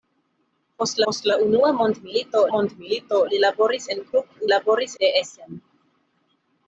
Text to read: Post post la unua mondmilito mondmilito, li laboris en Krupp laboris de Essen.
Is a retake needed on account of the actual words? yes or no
no